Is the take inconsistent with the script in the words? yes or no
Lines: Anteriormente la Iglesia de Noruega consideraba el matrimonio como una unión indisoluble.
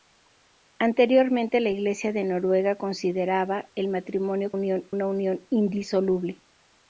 yes